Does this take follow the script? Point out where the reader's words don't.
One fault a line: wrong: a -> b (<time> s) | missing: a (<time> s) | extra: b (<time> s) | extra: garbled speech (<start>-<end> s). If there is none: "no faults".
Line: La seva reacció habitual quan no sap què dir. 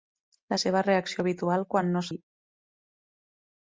missing: sap què (2.0 s)